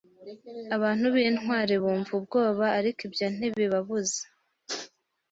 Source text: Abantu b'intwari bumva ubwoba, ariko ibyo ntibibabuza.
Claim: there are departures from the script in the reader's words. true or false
false